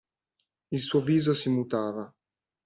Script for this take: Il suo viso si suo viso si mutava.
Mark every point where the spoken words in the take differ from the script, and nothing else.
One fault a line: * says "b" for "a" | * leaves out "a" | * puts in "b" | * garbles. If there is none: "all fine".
* leaves out "suo viso si"